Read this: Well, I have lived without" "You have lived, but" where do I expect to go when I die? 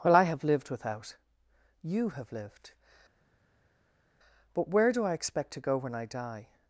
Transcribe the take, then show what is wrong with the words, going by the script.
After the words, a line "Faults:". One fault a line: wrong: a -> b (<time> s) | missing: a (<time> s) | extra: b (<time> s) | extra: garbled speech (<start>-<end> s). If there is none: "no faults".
Well, I have lived without" "You have lived, but" where do I expect to go when I die?
Faults:
no faults